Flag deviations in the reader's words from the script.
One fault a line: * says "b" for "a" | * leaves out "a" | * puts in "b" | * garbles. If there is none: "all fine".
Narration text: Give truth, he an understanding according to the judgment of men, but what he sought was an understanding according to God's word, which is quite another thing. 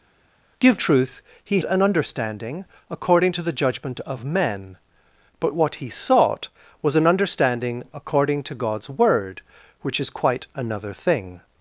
all fine